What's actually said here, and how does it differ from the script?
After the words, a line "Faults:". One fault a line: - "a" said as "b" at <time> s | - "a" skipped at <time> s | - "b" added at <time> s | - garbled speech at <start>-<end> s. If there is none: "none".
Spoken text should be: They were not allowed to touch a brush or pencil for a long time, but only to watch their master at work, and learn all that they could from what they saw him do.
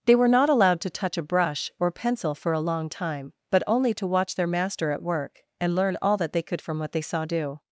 They were not allowed to touch a brush or pencil for a long time, but only to watch their master at work, and learn all that they could from what they saw do.
Faults:
- "him" skipped at 7.2 s